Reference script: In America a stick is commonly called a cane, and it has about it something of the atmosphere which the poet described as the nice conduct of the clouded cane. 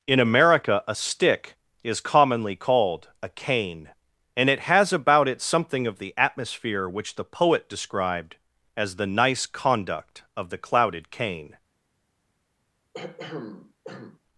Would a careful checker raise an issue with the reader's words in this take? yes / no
no